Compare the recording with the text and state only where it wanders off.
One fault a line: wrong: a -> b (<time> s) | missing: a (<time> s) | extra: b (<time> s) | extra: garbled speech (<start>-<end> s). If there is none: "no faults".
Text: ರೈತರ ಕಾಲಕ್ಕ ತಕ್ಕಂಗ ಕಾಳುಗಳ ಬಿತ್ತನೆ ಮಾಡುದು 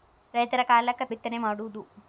missing: ತಕ್ಕಂಗ ಕಾಳುಗಳ (1.0 s)